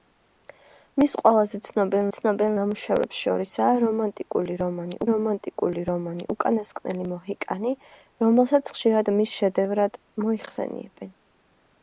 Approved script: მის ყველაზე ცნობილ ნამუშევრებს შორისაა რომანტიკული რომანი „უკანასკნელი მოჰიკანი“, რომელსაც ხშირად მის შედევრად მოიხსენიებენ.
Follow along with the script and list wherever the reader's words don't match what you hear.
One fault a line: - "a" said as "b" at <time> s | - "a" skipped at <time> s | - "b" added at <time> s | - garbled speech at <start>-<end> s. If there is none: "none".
- "ცნობილ" added at 2.2 s
- "რომანტიკული რომანი" added at 5.1 s